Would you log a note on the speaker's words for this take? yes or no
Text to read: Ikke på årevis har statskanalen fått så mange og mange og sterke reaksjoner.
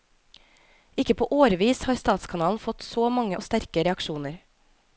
yes